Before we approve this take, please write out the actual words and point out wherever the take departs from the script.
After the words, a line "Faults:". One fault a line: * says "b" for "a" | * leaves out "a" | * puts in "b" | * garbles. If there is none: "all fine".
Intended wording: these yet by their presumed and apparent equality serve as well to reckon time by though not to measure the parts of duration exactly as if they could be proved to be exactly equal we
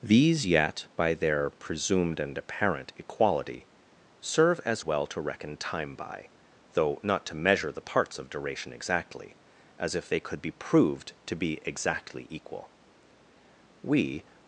these yet by their presumed and apparent equality serve as well to reckon time by though not to measure the parts of duration exactly as if they could be proved to be exactly equal we
Faults:
all fine